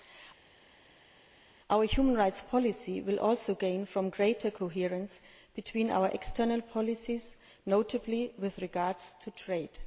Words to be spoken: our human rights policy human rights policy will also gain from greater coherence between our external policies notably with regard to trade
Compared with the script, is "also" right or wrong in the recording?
right